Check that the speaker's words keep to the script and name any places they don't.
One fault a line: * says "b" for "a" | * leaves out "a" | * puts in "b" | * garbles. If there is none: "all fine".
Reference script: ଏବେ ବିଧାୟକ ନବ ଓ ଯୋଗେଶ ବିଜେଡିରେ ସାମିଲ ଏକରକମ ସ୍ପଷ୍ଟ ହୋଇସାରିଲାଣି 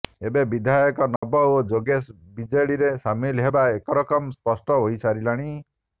* puts in "ହେବା"